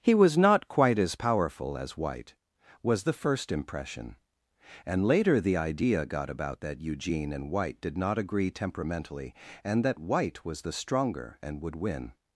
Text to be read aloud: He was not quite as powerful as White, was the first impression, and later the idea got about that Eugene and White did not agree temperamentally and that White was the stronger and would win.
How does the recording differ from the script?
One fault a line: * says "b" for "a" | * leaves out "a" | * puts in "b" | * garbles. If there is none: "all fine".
all fine